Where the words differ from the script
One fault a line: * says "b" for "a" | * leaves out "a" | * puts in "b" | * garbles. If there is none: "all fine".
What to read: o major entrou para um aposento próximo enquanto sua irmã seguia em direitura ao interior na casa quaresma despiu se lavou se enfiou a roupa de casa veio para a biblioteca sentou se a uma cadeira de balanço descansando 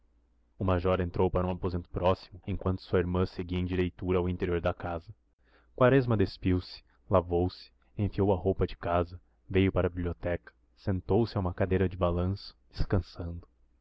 * says "da" for "na"